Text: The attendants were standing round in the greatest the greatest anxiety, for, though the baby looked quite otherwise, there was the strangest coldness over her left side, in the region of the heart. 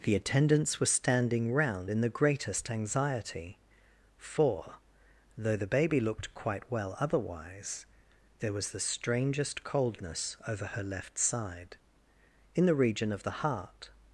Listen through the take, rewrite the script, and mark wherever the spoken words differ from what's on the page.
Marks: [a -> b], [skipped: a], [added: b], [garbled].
The attendants were standing round in the greatest [skipped: the greatest] anxiety, for, though the baby looked quite [added: well] otherwise, there was the strangest coldness over her left side, in the region of the heart.